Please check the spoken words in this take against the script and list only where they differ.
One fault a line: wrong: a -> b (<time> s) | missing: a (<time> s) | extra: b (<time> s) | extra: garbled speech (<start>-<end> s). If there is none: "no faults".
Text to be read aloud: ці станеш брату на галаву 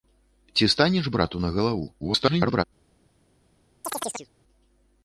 extra: garbled speech (2.0-2.6 s)